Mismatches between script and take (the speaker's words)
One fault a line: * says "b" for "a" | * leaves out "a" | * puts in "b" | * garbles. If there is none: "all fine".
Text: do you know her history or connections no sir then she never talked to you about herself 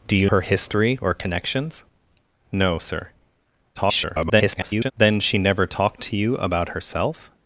* leaves out "know"
* garbles